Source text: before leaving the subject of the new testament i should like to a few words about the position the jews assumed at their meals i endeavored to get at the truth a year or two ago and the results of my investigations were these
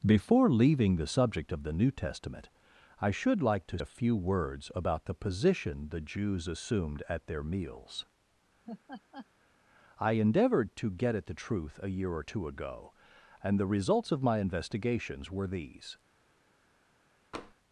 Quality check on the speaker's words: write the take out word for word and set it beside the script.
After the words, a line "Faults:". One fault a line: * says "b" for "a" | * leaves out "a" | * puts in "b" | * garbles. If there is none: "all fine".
before leaving the subject of the new testament i should like to a few words about the position the jews assumed at their meals i endeavored to get at the truth a year or two ago and the results of my investigations were these
Faults:
all fine